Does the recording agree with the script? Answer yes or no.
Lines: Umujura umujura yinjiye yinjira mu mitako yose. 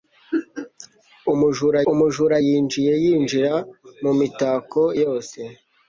yes